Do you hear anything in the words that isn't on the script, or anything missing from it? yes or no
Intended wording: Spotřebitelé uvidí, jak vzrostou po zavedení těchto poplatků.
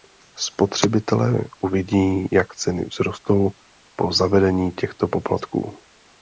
yes